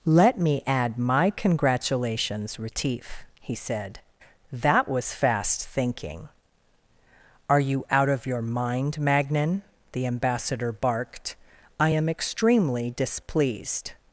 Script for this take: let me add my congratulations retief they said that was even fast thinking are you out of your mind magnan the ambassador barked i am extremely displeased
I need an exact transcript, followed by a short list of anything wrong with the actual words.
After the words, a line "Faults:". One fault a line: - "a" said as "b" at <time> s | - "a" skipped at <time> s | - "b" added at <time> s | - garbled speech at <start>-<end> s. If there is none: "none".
let me add my congratulations retief he said that was fast thinking are you out of your mind magnan the ambassador barked i am extremely displeased
Faults:
- "they" said as "he" at 3.4 s
- "even" skipped at 5.1 s